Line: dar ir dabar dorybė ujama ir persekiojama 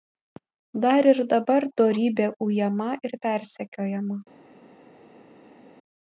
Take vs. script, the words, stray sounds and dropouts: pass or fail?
pass